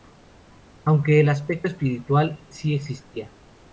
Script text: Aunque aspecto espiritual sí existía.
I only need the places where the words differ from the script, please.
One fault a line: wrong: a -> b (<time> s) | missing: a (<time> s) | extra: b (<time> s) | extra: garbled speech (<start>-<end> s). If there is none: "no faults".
extra: el (1.2 s)